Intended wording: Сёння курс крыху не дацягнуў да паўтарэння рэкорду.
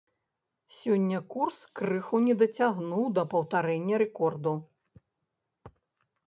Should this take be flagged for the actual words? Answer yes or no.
no